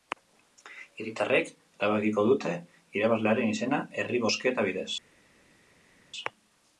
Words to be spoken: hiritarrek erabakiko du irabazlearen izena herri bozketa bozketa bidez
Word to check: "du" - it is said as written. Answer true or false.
false